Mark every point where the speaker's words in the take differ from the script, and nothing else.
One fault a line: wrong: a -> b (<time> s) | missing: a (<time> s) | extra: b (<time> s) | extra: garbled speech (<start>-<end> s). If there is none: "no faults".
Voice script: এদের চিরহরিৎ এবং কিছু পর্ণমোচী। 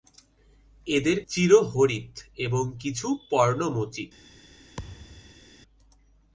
no faults